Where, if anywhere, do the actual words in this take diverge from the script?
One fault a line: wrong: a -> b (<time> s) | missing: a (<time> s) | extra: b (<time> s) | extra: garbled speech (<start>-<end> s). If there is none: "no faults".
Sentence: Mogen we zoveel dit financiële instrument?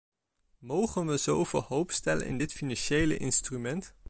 extra: hoop stellen in (1.6 s)